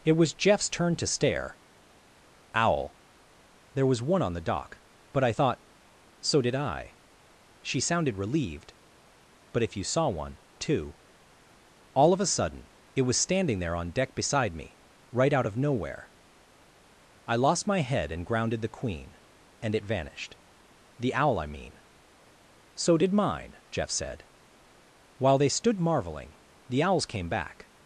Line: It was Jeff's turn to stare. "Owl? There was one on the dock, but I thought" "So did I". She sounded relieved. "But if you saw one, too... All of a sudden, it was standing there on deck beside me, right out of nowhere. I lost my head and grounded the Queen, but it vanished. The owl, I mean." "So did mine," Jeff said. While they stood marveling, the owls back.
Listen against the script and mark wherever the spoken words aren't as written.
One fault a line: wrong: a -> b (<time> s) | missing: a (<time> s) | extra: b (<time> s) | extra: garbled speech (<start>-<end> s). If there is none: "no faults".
wrong: but -> and (19.6 s)
extra: came (27.1 s)